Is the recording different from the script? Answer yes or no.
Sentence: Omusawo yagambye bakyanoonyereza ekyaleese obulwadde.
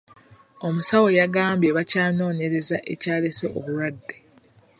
no